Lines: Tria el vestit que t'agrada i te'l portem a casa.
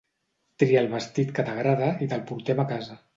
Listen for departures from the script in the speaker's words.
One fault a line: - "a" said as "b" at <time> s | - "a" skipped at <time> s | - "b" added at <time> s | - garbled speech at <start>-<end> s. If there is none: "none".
none